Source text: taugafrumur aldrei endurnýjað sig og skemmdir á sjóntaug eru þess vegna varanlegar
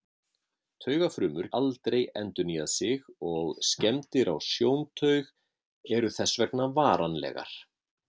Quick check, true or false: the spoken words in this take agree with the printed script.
true